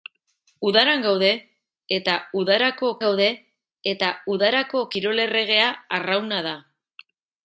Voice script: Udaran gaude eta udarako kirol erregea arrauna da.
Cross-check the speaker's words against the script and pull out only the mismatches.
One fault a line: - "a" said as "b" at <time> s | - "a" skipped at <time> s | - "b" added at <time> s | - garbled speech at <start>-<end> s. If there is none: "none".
- "gaude eta udarako" added at 3.0 s